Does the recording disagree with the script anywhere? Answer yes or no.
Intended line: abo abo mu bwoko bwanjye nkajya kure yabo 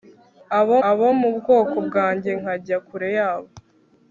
no